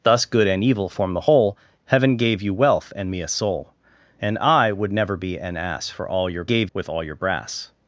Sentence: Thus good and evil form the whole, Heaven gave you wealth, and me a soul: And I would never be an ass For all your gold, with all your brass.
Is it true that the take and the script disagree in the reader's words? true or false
true